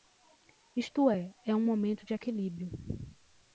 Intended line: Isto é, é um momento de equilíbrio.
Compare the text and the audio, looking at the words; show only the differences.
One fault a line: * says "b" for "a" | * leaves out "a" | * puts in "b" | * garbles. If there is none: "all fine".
all fine